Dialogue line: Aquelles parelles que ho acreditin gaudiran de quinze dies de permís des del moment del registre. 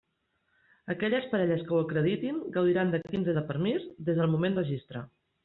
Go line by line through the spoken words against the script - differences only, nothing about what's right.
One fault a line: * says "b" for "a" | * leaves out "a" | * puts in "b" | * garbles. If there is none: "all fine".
* leaves out "dies"
* leaves out "del"